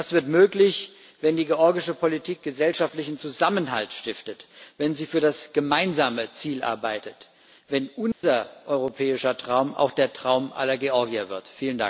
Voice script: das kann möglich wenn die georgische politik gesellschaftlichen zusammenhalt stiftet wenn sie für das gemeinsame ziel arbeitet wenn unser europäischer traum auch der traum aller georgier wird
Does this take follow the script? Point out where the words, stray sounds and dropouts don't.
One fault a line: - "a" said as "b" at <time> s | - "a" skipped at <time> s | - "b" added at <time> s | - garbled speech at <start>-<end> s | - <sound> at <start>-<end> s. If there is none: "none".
- "kann" said as "wird" at 0.1 s
- dropout at 8.1-8.2 s